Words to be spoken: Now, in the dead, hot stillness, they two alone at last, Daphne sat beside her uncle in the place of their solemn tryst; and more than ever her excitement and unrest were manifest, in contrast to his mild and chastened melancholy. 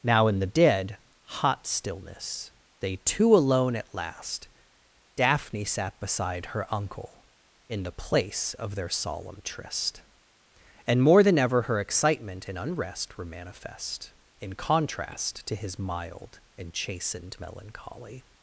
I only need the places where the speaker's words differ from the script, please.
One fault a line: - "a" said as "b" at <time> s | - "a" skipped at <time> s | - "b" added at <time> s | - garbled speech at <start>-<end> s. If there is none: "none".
none